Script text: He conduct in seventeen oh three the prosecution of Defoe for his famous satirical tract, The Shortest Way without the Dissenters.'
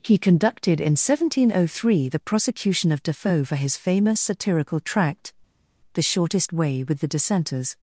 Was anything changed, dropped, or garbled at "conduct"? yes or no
yes